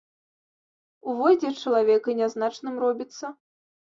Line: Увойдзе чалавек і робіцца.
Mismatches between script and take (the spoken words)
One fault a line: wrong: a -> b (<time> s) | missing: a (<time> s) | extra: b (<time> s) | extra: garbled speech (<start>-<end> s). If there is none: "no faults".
extra: нязначным (2.2 s)